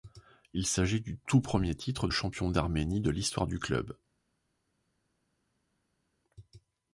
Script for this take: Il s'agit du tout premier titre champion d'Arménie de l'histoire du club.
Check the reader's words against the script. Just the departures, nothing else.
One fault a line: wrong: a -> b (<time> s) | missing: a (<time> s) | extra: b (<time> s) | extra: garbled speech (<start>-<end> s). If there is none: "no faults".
no faults